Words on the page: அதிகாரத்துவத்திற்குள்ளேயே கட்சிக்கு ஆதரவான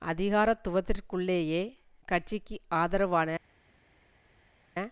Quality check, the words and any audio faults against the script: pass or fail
pass